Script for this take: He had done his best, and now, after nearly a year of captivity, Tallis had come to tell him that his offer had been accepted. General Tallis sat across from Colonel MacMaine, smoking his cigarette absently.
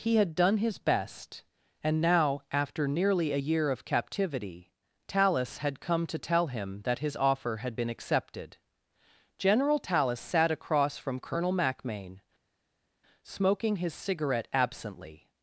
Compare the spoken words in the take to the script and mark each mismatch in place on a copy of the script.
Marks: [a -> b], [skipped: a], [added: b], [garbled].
He had done his best, and now, after nearly a year of captivity, Tallis had come to tell him that his offer had been accepted. General Tallis sat across from Colonel MacMaine, smoking his cigarette absently.